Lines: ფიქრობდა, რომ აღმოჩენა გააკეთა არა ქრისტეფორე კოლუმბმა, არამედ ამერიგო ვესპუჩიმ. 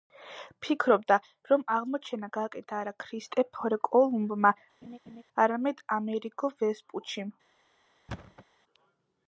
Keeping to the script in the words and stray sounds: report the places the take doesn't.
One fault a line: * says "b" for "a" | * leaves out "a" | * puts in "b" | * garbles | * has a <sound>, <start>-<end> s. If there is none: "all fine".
* has a laugh, 4.8-5.2 s
* has a thud, 8.1-8.5 s